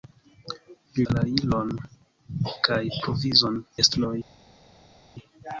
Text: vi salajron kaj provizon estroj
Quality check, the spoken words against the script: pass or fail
pass